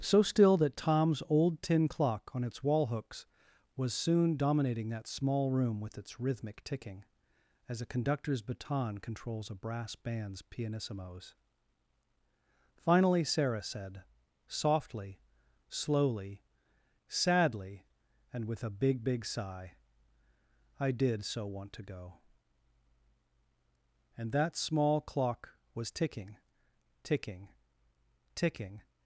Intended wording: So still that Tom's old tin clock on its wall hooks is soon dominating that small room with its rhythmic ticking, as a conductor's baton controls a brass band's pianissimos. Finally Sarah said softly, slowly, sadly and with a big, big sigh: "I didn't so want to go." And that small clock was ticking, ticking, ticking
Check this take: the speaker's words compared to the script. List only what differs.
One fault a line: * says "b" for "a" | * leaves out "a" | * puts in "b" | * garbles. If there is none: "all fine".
* says "was" for "is"
* says "did" for "didn't"